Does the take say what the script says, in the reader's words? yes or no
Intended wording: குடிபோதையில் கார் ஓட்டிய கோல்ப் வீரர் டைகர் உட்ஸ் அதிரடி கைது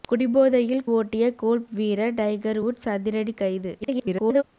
no